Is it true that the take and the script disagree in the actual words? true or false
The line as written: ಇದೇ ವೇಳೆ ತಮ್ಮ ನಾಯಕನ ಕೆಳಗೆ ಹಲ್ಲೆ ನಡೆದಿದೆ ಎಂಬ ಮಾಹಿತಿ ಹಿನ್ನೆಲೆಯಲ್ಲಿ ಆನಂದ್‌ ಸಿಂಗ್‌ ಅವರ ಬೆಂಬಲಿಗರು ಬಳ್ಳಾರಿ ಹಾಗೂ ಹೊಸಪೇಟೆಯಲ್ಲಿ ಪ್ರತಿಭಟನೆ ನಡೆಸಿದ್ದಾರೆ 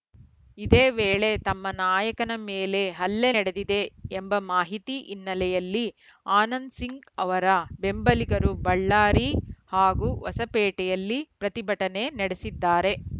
true